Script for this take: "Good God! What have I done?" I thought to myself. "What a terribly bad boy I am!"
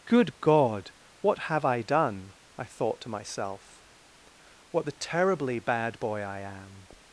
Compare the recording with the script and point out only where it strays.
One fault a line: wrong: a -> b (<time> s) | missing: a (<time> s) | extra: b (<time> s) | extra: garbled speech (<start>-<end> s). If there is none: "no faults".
wrong: a -> the (4.8 s)